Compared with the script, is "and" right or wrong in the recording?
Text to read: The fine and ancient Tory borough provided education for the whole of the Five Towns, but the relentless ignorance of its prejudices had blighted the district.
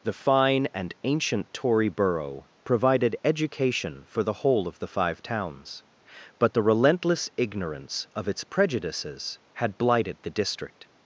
right